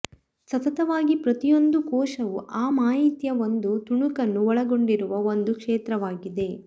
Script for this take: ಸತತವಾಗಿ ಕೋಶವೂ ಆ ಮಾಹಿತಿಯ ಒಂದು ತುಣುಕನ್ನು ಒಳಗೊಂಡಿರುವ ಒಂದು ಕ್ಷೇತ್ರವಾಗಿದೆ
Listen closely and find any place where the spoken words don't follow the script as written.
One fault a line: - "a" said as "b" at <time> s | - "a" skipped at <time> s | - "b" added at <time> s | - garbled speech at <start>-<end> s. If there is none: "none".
- "ಪ್ರತಿಯೊಂದು" added at 1.1 s